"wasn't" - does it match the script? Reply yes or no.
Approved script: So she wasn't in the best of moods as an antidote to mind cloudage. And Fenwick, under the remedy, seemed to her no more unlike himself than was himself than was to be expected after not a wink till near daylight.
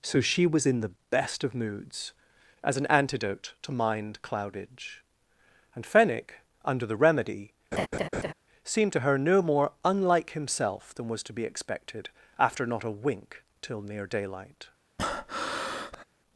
no